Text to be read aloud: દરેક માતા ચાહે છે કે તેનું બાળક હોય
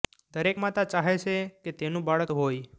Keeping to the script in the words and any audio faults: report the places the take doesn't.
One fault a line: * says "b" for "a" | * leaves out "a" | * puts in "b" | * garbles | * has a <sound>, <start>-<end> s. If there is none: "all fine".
all fine